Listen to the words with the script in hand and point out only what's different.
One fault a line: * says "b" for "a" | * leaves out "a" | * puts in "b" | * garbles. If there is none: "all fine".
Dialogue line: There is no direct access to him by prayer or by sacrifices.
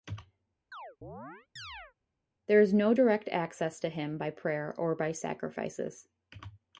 all fine